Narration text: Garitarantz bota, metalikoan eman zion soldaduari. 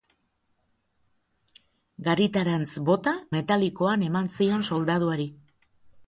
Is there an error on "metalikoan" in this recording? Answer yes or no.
no